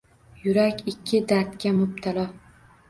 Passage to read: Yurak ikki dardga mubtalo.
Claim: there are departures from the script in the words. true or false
false